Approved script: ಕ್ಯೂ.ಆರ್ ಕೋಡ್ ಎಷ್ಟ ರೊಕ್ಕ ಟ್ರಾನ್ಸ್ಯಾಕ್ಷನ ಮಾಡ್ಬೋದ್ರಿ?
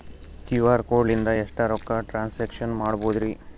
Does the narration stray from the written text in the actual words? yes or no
yes